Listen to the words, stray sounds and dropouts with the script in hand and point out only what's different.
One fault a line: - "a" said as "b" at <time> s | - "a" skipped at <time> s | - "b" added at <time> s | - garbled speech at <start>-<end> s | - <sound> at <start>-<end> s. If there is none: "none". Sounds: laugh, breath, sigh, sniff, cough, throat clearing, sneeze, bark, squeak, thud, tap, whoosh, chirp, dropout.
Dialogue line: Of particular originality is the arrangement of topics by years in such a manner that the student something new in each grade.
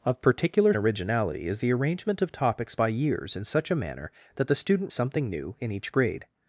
none